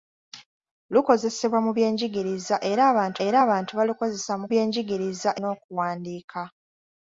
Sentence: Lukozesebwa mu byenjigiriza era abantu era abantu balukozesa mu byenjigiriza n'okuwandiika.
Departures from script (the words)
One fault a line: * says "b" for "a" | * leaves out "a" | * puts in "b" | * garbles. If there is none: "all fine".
all fine